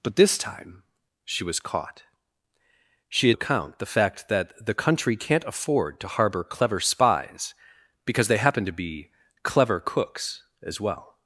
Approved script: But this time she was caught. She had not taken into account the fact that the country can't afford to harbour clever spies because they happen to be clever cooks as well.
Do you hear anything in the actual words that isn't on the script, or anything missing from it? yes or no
yes